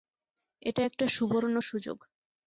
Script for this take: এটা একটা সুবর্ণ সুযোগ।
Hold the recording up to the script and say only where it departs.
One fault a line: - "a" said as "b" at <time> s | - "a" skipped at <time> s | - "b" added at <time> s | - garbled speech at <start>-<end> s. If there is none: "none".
none